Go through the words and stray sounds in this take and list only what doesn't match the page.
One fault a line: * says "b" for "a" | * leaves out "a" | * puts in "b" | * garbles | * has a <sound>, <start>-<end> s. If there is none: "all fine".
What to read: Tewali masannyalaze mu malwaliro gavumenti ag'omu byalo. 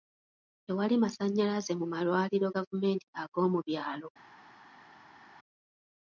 all fine